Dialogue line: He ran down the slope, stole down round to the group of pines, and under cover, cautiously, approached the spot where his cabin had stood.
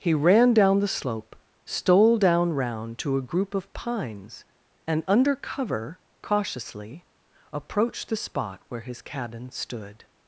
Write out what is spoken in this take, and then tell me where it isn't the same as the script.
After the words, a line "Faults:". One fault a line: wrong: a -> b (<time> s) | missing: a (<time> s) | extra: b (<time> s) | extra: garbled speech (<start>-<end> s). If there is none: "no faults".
He ran down the slope, stole down round to a group of pines, and under cover, cautiously, approached the spot where his cabin stood.
Faults:
wrong: the -> a (3.2 s)
missing: had (9.5 s)